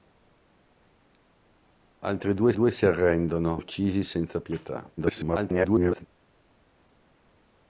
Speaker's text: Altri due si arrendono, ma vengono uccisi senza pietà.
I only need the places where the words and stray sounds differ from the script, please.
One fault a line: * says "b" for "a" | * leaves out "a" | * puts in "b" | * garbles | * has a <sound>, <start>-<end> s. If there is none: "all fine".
* puts in "due"
* leaves out "ma vengono"
* garbles